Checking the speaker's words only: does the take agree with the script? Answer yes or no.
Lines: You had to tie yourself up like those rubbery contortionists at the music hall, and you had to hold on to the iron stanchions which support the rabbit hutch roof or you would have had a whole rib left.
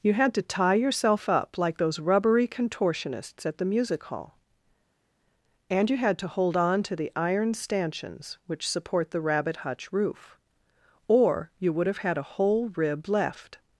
yes